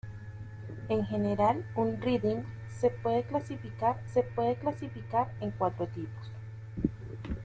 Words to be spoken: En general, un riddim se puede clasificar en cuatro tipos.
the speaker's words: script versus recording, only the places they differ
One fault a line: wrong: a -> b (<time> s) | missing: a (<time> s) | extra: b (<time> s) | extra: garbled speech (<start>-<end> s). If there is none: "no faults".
extra: se puede clasificar (4.1 s)